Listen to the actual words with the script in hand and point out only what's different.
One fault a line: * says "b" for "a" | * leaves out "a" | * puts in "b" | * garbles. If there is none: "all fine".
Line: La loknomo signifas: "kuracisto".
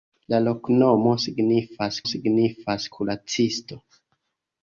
* puts in "signifas"